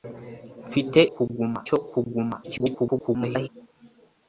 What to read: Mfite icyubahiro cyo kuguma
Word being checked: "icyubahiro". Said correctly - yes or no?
no